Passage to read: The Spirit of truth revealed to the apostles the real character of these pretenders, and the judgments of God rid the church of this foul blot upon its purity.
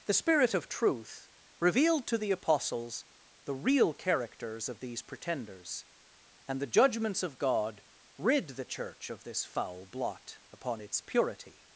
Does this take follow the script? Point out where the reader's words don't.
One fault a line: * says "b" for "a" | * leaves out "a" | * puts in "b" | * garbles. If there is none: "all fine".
* says "characters" for "character"